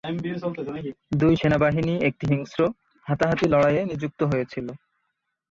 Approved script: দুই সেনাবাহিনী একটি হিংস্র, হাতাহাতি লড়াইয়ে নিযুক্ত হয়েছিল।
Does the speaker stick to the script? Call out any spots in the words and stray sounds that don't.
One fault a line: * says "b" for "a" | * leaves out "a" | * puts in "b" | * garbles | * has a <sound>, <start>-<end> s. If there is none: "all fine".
all fine